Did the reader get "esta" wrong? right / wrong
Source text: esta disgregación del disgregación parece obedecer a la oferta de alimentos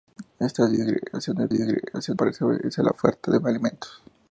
right